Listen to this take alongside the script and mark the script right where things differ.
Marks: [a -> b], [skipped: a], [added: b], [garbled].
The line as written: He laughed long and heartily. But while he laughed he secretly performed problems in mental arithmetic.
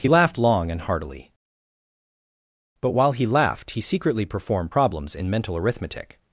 He laughed long and heartily. But while he laughed he secretly performed problems in mental arithmetic.